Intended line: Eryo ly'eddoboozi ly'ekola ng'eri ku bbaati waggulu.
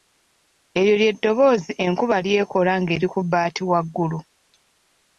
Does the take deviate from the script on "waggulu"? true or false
false